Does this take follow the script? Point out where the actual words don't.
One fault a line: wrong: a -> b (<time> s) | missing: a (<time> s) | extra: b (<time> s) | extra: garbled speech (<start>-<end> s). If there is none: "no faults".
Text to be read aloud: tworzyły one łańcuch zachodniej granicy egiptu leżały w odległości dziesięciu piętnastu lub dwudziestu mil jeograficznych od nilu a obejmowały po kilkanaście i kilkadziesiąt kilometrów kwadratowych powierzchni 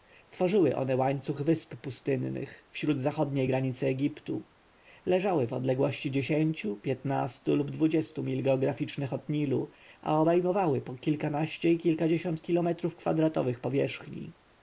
extra: wysp pustynnych wzdłuż (1.4 s)